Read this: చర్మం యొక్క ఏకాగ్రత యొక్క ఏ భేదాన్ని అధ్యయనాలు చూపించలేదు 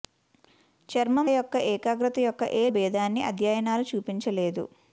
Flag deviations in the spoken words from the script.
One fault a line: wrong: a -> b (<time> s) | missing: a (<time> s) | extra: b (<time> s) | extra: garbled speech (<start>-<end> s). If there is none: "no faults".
no faults